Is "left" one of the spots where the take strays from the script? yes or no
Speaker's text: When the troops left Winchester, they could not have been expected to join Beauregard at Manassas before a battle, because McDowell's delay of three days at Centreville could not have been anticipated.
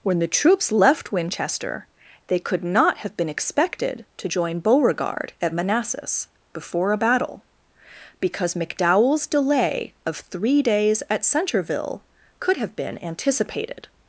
no